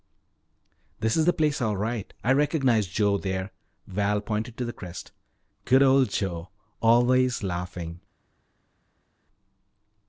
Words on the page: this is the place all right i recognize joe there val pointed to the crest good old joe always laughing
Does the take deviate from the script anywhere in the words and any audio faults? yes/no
no